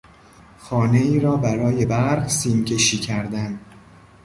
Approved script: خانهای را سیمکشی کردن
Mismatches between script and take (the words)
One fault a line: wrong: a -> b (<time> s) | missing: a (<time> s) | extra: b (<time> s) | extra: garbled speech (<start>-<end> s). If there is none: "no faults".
extra: برای برق (1.4 s)